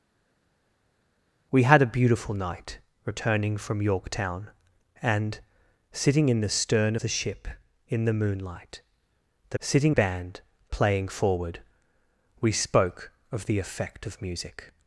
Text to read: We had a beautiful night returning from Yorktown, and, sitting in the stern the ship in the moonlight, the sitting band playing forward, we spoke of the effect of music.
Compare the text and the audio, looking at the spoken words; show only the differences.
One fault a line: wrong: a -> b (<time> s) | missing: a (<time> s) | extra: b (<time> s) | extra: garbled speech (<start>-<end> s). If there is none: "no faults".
no faults